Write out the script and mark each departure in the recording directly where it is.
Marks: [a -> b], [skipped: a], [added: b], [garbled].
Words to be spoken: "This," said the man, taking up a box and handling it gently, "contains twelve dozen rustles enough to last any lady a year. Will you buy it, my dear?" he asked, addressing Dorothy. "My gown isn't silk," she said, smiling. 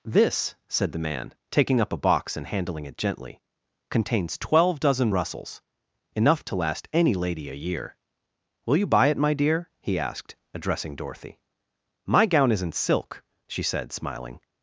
"This," said the man, taking up a box and handling it gently, "contains twelve dozen rustles enough to last any lady a year. Will you buy it, my dear?" he asked, addressing Dorothy. "My gown isn't silk," she said, smiling.